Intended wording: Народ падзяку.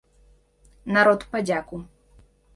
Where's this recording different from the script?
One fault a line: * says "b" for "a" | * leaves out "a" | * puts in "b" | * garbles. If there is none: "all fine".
all fine